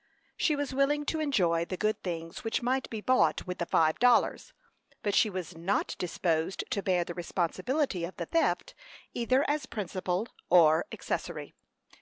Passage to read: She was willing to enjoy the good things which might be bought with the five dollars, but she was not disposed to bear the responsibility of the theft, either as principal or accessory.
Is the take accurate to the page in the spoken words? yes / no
yes